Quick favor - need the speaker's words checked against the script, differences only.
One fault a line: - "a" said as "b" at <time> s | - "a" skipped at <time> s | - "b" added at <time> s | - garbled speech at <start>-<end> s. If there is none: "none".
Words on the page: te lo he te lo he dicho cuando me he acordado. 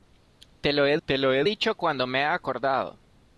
none